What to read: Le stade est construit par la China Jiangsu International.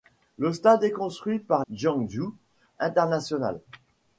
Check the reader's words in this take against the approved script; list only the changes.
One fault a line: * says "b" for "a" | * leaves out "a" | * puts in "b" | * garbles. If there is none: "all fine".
* leaves out "la China"